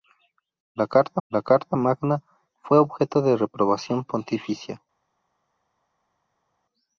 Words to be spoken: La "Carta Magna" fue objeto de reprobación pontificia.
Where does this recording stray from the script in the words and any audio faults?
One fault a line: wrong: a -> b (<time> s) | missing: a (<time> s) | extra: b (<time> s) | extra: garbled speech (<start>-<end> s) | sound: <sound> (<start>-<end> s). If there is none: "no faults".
extra: la Carta (1.3 s)